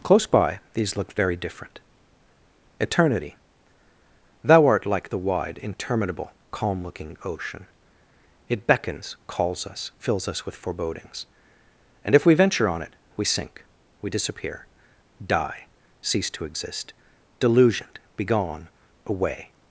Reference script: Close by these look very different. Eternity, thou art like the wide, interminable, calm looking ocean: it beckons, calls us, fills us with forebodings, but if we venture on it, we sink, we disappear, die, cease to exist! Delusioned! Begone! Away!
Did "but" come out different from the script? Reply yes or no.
yes